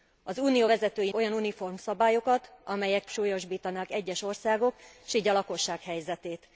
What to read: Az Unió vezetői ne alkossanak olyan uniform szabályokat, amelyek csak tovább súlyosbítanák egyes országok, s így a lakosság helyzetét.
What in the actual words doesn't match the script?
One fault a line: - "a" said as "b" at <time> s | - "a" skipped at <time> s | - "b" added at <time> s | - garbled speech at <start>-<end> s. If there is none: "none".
- "ne alkossanak" skipped at 1.1 s
- "csak tovább" skipped at 3.1 s